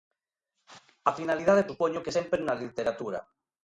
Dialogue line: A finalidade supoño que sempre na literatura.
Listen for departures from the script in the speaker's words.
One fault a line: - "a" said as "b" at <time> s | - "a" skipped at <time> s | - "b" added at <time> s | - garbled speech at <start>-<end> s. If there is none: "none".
none